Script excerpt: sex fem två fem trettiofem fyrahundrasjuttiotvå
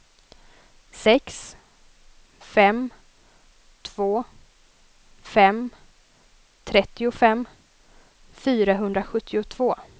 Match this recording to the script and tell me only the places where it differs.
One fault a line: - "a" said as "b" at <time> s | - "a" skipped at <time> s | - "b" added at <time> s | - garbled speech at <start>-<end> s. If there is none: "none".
none